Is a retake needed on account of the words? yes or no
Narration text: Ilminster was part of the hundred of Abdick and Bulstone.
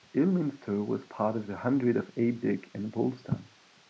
no